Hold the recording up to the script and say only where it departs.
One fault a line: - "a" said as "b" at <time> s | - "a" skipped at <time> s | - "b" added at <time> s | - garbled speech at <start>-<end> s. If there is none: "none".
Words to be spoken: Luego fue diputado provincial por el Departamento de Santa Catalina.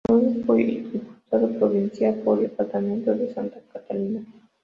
- "el" skipped at 2.4 s